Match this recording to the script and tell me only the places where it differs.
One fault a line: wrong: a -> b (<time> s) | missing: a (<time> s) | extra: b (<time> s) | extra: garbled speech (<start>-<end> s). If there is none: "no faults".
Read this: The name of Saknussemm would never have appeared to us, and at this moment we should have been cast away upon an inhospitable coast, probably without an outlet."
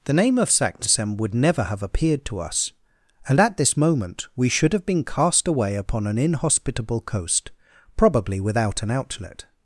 no faults